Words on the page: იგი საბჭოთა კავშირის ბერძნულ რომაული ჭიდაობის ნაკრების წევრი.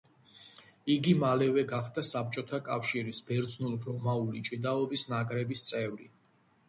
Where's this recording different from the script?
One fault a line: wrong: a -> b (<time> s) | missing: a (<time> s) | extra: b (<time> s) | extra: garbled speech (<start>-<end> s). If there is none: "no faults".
extra: მალევე გახდა (1.2 s)